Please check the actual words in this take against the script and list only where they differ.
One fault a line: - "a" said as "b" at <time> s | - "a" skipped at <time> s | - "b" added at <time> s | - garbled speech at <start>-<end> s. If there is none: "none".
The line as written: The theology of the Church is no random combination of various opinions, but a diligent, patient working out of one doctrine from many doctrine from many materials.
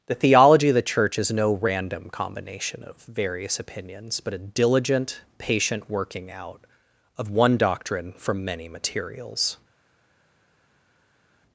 - "doctrine from many" skipped at 8.7 s